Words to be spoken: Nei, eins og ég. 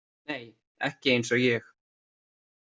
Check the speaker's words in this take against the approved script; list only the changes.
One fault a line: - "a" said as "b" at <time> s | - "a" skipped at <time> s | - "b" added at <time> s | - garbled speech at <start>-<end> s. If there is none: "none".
- "ekki" added at 0.9 s